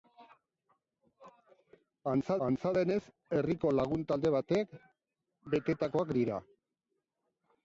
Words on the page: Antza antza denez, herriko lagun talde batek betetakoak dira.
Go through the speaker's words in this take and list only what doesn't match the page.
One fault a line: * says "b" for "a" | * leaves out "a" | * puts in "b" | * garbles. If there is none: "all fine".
all fine